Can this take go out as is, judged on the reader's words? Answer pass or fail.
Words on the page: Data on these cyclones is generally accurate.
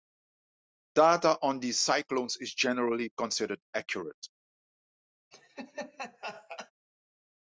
fail